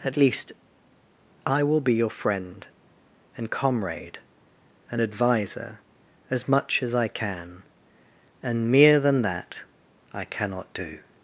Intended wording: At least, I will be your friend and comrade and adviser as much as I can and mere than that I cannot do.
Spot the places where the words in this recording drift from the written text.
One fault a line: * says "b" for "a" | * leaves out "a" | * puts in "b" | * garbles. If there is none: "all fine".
all fine